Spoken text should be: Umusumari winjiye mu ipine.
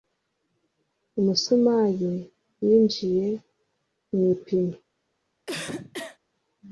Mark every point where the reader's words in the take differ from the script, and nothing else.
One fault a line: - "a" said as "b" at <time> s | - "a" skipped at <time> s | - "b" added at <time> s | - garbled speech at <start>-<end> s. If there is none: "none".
none